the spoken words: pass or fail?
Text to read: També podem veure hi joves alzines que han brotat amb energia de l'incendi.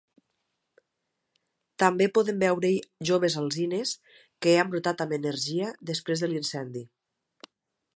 fail